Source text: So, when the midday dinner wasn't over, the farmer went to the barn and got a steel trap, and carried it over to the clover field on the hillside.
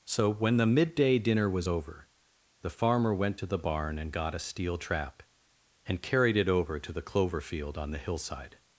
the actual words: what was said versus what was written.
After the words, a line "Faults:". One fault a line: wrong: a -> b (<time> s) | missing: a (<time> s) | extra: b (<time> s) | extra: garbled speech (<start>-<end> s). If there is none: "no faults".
So, when the midday dinner was over, the farmer went to the barn and got a steel trap, and carried it over to the clover field on the hillside.
Faults:
wrong: wasn't -> was (1.5 s)